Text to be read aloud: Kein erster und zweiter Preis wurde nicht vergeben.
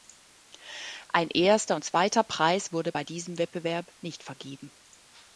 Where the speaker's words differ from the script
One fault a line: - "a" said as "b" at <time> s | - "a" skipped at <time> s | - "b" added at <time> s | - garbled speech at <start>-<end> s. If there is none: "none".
- "Kein" said as "Ein" at 1.1 s
- "bei diesem Wettbewerb" added at 2.9 s